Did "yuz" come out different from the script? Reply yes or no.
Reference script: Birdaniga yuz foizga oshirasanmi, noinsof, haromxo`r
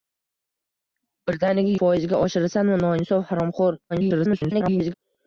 yes